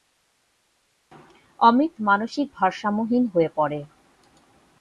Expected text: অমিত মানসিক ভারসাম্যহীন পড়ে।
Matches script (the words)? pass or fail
fail